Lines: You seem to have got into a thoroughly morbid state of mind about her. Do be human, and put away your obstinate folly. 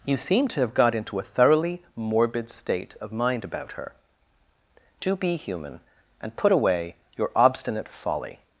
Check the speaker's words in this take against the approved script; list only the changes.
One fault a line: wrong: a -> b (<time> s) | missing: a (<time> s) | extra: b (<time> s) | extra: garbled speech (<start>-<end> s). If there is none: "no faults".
no faults